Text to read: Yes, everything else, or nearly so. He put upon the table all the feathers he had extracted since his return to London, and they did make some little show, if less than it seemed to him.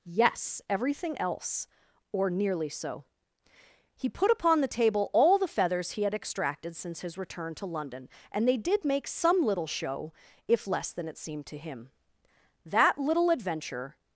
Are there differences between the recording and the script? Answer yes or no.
yes